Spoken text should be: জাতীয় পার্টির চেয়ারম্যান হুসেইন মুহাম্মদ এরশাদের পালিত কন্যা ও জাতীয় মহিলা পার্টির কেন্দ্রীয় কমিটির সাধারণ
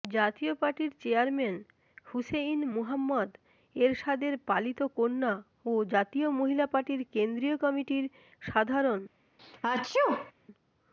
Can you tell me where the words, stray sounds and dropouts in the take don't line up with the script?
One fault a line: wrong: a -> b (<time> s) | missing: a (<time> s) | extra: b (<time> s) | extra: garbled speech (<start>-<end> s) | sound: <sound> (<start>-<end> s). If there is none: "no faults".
sound: sneeze (9.4-10.3 s)